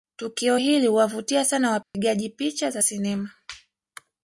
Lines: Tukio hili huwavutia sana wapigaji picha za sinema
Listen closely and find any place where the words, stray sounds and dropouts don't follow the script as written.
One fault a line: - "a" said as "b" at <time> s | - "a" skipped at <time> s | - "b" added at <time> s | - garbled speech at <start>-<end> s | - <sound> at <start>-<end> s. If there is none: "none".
- dropout at 1.8-1.9 s